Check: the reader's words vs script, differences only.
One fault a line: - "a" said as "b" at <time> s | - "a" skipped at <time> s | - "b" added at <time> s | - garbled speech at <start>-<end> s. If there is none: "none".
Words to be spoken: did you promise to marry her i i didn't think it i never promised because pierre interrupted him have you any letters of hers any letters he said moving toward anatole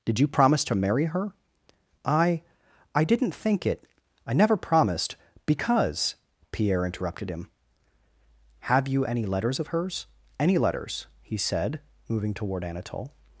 none